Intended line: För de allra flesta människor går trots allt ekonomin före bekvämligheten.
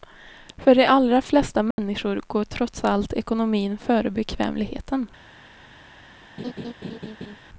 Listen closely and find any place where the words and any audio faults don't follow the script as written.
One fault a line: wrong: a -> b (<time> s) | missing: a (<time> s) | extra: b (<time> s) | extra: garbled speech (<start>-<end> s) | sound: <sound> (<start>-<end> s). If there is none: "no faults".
sound: dropout (1.7-1.8 s)
sound: laugh (6.4-7.4 s)